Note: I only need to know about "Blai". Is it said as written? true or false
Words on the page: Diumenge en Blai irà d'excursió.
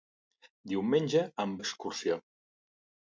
false